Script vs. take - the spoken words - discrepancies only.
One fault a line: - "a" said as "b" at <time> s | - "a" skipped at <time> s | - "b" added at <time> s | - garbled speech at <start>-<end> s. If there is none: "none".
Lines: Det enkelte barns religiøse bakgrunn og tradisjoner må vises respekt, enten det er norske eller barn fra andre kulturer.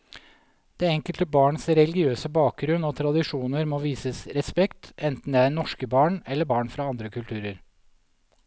- "barn" added at 6.0 s